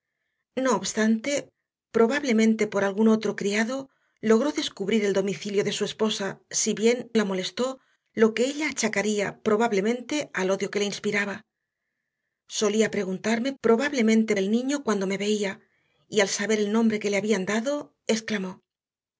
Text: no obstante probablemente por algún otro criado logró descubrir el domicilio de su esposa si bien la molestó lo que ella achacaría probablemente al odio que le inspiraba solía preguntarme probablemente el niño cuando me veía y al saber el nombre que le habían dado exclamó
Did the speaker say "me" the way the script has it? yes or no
yes